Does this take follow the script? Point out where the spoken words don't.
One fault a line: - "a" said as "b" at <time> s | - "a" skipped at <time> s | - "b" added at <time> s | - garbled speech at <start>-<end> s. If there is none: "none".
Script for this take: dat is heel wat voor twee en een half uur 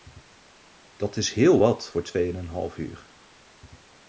none